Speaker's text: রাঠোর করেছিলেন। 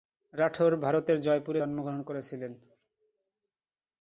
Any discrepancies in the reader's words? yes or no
yes